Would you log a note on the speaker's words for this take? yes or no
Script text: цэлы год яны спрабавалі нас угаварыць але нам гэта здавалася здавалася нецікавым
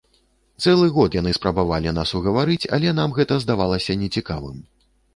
yes